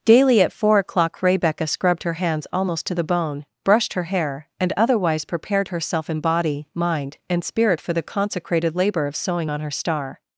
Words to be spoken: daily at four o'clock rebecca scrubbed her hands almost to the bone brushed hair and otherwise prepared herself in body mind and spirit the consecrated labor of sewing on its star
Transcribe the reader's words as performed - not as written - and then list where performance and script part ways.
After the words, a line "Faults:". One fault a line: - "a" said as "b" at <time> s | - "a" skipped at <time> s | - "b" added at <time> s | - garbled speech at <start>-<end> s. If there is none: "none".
daily at four o'clock rebecca scrubbed her hands almost to the bone brushed her hair and otherwise prepared herself in body mind and spirit for the consecrated labor of sewing on her star
Faults:
- "her" added at 3.9 s
- "for" added at 7.8 s
- "its" said as "her" at 9.6 s